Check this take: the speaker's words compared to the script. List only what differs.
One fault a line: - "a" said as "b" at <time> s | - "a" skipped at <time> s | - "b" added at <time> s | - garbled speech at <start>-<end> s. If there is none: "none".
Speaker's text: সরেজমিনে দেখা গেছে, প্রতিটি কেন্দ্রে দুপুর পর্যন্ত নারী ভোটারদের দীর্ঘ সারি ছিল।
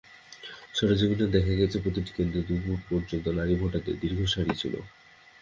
none